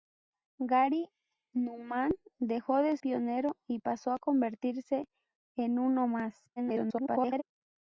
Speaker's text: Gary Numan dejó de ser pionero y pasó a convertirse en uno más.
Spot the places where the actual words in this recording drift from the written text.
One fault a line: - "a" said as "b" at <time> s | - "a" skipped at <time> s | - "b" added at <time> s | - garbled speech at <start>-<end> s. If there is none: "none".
- "ser" skipped at 3.0 s
- garbled speech at 6.6-7.4 s